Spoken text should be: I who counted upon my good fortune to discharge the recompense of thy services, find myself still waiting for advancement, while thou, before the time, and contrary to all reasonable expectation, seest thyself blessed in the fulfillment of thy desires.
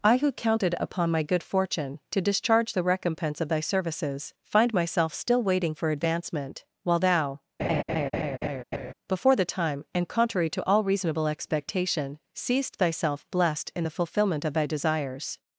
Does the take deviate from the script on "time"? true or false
false